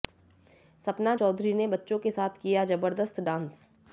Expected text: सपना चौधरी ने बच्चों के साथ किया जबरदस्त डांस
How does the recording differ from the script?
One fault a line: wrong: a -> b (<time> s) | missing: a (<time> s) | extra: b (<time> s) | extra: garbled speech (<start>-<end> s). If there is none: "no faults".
no faults